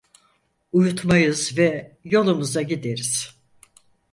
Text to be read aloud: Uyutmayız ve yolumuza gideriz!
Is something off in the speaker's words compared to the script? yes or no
no